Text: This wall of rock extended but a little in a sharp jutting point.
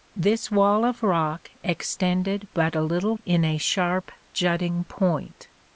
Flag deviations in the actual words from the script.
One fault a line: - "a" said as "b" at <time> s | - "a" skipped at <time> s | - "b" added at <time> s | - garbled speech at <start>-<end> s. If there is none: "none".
none